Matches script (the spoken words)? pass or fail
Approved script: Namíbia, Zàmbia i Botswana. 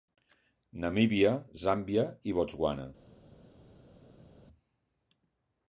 pass